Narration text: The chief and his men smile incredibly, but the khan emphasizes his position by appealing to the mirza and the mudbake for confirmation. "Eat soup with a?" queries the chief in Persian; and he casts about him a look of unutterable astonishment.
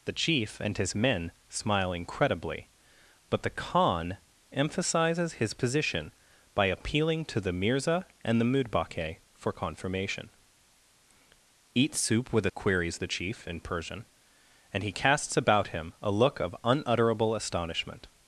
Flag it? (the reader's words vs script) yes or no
no